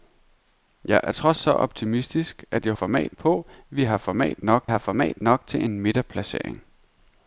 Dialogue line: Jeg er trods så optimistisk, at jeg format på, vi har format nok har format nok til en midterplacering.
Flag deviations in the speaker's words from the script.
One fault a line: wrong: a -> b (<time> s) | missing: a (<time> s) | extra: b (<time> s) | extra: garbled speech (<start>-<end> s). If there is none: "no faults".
no faults